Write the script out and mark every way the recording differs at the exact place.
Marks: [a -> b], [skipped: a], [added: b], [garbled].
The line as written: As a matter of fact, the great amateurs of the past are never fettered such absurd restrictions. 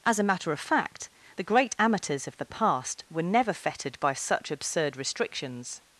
As a matter of fact, the great amateurs of the past [are -> were] never fettered [added: by] such absurd restrictions.